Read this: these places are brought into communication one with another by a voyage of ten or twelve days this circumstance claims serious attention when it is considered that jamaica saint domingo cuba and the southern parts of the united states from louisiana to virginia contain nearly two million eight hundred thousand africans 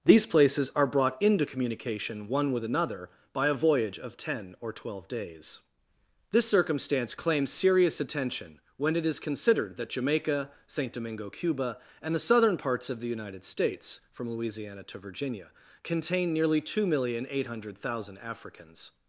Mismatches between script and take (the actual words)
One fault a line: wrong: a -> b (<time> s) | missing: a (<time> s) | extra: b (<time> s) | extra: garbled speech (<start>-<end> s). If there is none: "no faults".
no faults